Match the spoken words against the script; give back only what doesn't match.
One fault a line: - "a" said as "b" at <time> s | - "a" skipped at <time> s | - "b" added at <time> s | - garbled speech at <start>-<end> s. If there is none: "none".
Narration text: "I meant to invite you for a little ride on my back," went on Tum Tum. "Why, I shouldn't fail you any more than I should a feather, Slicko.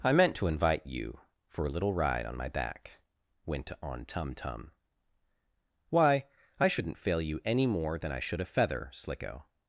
none